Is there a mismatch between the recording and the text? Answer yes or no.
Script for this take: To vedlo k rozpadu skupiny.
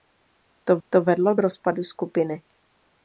yes